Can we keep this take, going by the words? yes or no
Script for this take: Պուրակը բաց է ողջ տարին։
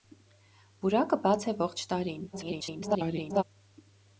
no